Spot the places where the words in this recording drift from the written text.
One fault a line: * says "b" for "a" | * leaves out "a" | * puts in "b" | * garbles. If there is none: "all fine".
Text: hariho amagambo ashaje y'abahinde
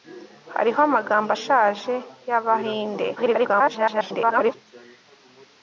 * garbles